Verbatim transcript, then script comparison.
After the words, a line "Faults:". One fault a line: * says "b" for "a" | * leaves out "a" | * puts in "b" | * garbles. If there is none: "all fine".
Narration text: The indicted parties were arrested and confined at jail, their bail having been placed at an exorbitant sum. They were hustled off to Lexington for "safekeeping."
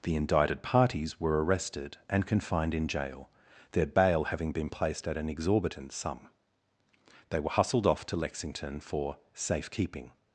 The indicted parties were arrested and confined in jail, their bail having been placed at an exorbitant sum. They were hustled off to Lexington for "safekeeping."
Faults:
* says "in" for "at"